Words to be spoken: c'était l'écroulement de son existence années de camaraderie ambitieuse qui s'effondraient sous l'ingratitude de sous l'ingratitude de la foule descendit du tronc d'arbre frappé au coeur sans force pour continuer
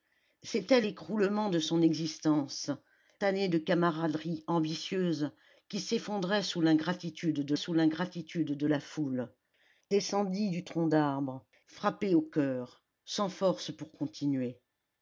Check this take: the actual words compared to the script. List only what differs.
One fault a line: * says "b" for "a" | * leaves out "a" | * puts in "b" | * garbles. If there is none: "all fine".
all fine